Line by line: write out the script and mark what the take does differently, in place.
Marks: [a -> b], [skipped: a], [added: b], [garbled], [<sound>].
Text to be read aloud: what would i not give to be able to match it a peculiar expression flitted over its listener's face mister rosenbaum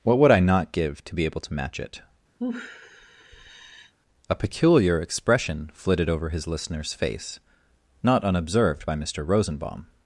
what would i not give to be able to match it [sigh] a peculiar expression flitted over [its -> his] listener's face [added: not unobserved by] mister rosenbaum